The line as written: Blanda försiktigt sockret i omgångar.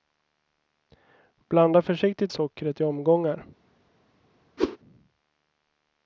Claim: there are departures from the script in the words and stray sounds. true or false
true